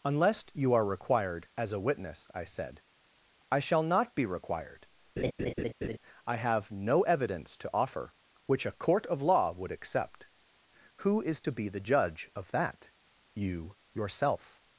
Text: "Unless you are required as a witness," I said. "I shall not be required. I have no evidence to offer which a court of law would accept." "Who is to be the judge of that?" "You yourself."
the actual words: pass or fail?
pass